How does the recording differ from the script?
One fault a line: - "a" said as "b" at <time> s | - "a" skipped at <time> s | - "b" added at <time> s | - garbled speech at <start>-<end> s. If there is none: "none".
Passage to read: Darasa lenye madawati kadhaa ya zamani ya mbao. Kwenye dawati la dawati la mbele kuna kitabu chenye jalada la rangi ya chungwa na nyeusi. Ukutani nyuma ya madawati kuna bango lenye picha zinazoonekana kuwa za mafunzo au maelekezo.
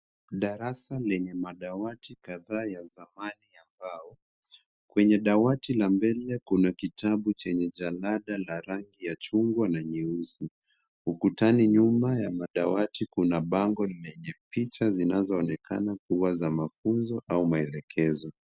- "dawati la" skipped at 5.9 s